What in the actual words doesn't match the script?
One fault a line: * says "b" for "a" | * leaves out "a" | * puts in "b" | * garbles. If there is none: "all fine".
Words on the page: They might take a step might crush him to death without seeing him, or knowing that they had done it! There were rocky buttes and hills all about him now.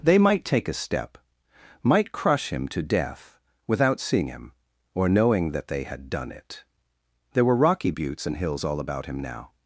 all fine